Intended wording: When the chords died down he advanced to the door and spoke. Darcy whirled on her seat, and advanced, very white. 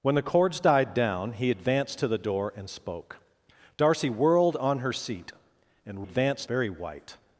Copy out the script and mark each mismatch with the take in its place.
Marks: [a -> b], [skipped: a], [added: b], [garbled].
When the chords died down he advanced to the door and spoke. Darcy whirled on her seat, and advanced, very white.